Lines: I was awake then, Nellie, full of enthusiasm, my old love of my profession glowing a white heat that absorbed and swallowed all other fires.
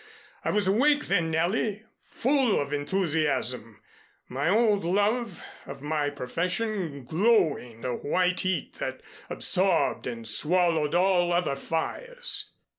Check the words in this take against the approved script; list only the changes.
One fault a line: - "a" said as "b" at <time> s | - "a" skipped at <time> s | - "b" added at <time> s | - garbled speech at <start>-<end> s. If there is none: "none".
none